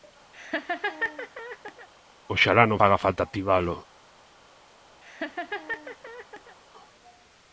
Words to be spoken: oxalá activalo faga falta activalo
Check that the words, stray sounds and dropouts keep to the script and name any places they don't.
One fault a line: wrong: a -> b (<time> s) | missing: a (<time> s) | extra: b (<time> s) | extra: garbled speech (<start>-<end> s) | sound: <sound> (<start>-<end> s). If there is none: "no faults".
sound: laugh (0.3-1.9 s)
wrong: activalo -> non (2.7 s)
sound: laugh (5.0-6.6 s)